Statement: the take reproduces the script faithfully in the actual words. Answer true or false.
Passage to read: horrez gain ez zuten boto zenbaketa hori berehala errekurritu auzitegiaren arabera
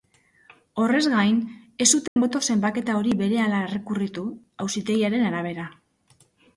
true